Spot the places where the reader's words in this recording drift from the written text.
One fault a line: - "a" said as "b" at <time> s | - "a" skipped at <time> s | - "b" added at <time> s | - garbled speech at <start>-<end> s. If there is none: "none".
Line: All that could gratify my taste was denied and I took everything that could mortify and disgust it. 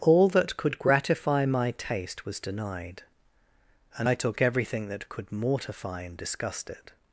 none